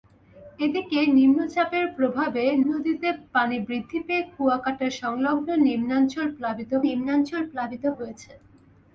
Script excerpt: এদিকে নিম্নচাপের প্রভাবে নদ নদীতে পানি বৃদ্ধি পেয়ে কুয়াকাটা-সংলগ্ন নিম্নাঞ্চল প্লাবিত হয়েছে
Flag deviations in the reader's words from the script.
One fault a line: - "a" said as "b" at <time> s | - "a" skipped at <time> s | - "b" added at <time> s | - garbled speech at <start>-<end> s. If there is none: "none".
- "নদ" skipped at 2.4 s
- "নিম্নাঞ্চল প্লাবিত" added at 6.9 s